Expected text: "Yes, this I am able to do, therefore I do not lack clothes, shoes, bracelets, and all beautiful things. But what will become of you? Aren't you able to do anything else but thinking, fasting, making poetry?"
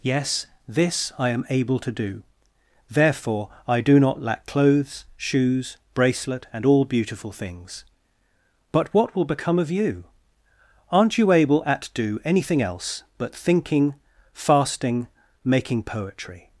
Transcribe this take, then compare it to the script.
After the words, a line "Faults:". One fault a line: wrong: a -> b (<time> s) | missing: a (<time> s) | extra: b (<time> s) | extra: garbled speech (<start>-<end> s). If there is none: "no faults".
"Yes, this I am able to do, therefore I do not lack clothes, shoes, bracelet, and all beautiful things. But what will become of you? Aren't you able at do anything else but thinking, fasting, making poetry?"
Faults:
wrong: bracelets -> bracelet (5.9 s)
wrong: to -> at (11.7 s)